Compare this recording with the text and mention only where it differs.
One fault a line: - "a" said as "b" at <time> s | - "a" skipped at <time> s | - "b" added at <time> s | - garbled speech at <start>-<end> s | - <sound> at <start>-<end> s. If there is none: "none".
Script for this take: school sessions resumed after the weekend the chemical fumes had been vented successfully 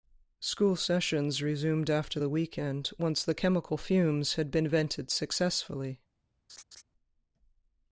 - "once" added at 3.0 s
- laugh at 6.5-6.8 s